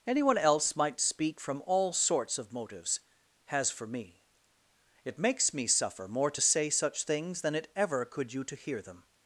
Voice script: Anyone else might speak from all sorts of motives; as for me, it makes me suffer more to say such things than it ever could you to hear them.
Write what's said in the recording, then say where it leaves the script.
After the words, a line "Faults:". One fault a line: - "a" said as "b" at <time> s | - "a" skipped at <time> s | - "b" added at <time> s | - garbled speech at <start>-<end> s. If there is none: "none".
Anyone else might speak from all sorts of motives; has for me, it makes me suffer more to say such things than it ever could you to hear them.
Faults:
- "as" said as "has" at 3.5 s